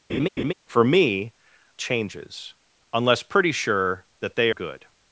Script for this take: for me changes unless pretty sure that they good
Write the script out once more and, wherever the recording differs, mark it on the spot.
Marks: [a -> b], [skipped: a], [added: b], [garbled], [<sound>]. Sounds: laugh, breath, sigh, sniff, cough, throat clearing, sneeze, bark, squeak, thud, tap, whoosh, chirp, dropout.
[laugh] for me changes unless pretty sure that they good